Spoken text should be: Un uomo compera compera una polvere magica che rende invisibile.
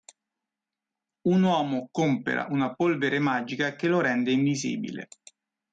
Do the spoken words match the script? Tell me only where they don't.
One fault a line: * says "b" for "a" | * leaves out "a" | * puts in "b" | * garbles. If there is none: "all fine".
* leaves out "compera"
* puts in "lo"